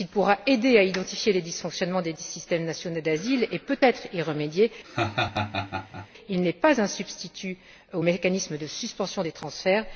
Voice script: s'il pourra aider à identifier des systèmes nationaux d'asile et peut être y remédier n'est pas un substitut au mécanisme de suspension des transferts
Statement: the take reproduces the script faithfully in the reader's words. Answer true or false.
false